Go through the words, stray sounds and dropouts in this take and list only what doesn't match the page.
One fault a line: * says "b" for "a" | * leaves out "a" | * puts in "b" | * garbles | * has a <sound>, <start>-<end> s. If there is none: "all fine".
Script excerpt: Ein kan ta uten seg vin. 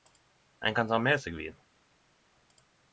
* says "med" for "uten"